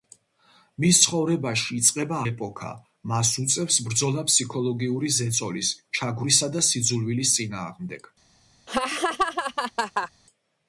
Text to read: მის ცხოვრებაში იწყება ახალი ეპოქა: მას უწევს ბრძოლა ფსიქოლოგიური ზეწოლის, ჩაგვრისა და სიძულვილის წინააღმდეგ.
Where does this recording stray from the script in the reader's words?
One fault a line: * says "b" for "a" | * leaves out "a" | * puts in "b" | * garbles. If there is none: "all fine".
* leaves out "ახალი"